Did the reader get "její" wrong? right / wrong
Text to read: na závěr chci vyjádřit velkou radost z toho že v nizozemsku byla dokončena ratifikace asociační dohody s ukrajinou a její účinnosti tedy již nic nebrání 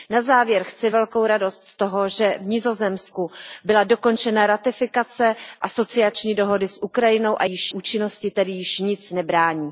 wrong